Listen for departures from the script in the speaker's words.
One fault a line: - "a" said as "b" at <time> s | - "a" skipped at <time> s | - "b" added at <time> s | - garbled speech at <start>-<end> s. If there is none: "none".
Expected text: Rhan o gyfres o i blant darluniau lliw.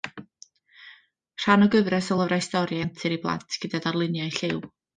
- "lyfrau stori antur" added at 2.2 s
- "gyda" added at 3.6 s